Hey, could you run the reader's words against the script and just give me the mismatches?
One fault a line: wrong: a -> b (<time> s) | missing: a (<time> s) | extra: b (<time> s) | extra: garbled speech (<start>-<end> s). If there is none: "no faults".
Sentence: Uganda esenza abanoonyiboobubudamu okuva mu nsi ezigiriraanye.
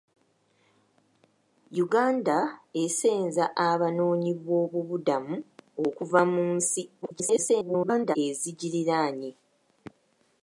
extra: garbled speech (7.0-8.2 s)